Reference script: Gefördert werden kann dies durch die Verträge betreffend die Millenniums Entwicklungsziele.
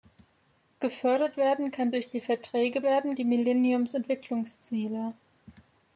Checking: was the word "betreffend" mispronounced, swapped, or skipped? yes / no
yes